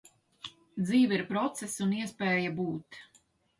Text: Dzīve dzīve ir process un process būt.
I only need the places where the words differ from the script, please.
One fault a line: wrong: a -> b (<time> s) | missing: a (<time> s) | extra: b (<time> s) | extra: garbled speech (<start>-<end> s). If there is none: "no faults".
missing: dzīve (1.2 s)
wrong: process -> iespēja (2.0 s)